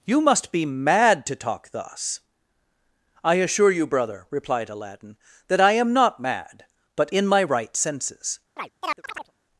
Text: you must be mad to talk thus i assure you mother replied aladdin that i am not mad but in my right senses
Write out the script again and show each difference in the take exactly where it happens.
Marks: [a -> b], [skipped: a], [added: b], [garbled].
you must be mad to talk thus i assure you [mother -> brother] replied aladdin that i am not mad but in my right senses